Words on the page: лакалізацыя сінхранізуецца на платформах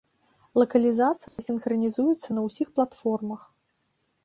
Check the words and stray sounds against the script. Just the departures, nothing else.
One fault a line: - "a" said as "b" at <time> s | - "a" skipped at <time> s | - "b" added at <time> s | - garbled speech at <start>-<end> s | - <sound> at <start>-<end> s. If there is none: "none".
- dropout at 1.3-1.4 s
- "ўсіх" added at 2.5 s